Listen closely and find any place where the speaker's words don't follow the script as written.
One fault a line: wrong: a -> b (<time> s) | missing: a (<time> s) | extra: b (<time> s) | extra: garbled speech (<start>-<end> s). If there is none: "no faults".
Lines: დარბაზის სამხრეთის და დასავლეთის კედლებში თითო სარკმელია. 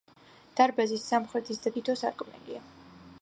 missing: დასავლეთის კედლებში (1.7 s)